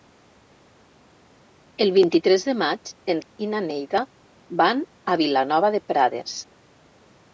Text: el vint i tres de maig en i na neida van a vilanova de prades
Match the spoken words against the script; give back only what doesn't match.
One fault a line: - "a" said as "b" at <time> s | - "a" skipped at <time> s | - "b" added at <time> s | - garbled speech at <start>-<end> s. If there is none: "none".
none